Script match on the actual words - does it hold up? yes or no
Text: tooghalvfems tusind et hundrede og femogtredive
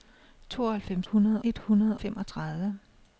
no